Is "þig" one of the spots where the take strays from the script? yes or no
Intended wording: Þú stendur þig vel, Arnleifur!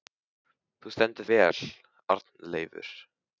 yes